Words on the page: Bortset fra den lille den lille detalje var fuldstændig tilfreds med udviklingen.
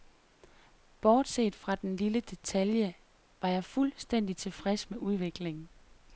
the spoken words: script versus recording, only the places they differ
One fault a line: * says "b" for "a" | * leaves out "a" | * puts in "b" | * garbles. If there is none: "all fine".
* leaves out "den lille"
* puts in "jeg"